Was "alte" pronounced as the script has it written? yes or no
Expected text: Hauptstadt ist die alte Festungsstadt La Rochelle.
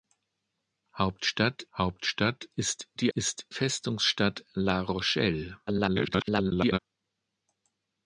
no